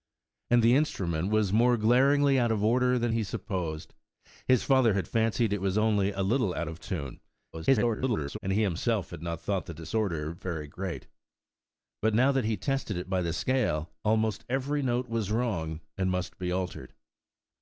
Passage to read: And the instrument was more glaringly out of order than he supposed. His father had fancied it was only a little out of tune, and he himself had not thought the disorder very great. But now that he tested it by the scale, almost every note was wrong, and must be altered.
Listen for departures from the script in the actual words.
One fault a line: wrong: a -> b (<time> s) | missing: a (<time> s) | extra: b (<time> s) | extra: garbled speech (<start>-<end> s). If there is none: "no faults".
extra: garbled speech (7.5-8.4 s)